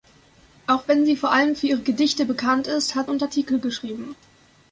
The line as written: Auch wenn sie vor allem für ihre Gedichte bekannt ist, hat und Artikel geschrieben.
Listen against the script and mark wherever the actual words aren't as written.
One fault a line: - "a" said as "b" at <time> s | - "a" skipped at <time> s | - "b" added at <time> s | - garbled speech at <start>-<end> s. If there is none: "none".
none